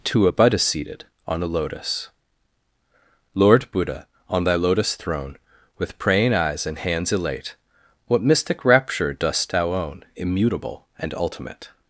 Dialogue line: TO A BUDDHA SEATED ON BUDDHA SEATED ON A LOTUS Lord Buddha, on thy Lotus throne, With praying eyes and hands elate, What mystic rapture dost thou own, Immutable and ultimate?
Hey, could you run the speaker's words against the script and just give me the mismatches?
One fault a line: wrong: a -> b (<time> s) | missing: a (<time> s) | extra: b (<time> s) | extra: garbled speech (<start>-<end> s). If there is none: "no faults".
missing: BUDDHA SEATED ON (1.4 s)